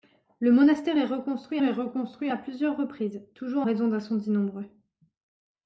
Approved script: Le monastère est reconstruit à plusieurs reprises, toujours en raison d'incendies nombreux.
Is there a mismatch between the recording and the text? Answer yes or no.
yes